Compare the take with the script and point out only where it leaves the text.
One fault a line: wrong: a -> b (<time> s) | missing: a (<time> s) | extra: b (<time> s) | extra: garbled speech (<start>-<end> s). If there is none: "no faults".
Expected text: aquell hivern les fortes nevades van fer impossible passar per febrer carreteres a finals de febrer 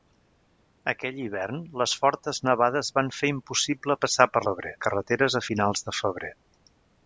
no faults